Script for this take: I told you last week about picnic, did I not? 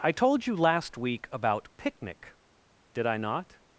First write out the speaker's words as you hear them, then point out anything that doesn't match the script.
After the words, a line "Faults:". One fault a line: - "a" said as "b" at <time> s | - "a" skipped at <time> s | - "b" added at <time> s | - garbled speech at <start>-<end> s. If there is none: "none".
I told you last week about picnic, did I not?
Faults:
none